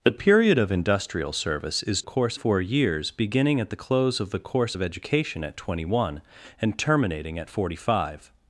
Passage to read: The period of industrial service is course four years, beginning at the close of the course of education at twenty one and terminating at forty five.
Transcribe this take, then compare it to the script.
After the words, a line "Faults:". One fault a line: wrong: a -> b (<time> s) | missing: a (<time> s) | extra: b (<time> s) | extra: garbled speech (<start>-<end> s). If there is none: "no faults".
The period of industrial service is course four years, beginning at the close of the course of education at twenty one and terminating at forty five.
Faults:
no faults